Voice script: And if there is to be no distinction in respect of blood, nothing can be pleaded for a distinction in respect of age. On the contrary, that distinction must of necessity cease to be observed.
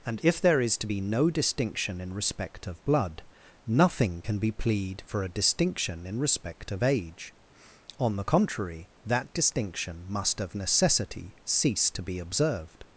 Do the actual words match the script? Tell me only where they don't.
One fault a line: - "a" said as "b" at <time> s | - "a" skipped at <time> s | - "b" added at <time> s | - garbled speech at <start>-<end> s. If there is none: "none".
- "pleaded" said as "plead" at 4.5 s